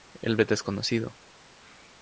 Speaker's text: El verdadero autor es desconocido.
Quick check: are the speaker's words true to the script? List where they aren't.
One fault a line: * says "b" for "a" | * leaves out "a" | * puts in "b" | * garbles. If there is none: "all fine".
* leaves out "verdadero autor"